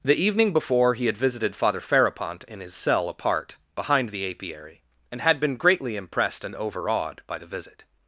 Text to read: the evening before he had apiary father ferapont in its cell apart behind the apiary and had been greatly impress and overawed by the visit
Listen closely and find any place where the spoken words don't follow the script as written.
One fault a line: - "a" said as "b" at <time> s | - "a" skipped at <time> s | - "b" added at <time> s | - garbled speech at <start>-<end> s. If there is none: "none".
- "apiary" said as "visited" at 1.1 s
- "its" said as "his" at 2.6 s
- "impress" said as "impressed" at 6.0 s